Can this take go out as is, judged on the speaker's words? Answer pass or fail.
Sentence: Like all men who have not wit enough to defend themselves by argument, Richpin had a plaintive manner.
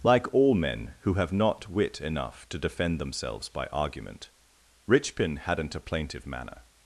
fail